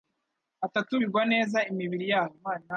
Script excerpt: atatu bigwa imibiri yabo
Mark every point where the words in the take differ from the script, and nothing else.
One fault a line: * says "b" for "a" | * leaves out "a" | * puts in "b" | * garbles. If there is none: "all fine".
* puts in "neza"